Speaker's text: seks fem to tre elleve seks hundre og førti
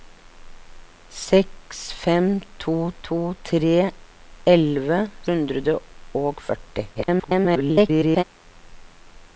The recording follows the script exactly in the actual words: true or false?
false